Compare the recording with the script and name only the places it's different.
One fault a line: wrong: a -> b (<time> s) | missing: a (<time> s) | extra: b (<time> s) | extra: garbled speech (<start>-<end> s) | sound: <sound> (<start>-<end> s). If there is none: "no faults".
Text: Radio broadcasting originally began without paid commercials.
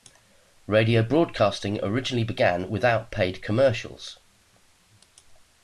no faults